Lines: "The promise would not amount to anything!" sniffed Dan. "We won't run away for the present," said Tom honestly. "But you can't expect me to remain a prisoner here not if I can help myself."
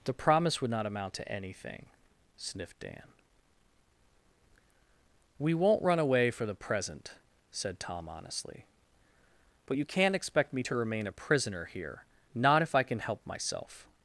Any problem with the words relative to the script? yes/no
no